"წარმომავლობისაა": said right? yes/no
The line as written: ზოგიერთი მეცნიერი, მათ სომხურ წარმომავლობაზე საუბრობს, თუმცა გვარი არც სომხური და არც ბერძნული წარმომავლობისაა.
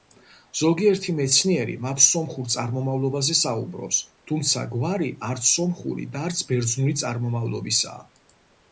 yes